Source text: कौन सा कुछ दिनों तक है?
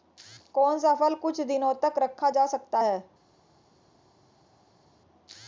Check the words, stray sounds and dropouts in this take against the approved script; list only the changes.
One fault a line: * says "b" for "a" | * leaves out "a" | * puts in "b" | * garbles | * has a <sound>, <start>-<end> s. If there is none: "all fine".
* puts in "फल"
* puts in "रखा जा सकता"